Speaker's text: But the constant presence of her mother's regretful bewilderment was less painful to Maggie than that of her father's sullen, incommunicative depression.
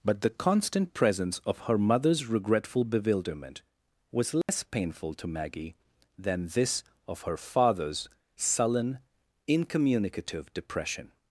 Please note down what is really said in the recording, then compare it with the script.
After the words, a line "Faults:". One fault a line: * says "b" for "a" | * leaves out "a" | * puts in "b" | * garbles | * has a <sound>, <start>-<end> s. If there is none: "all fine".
But the constant presence of her mother's regretful bewilderment was less painful to Maggie than this of her father's sullen, incommunicative depression.
Faults:
* has a dropout, 4.4-4.5 s
* says "this" for "that"